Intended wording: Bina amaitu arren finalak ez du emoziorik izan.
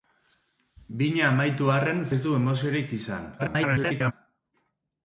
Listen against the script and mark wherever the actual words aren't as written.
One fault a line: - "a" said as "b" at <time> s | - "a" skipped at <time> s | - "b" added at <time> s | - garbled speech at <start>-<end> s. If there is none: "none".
- "finalak" skipped at 2.0 s
- garbled speech at 3.4-4.1 s